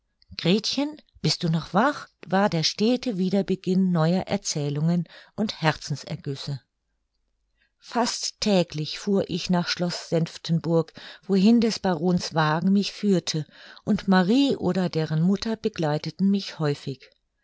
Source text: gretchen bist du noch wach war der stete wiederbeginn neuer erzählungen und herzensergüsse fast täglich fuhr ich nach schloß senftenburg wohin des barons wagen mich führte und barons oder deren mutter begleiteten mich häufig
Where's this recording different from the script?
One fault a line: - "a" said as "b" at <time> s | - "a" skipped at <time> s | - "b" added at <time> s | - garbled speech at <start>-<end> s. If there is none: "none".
- "barons" said as "marie" at 14.1 s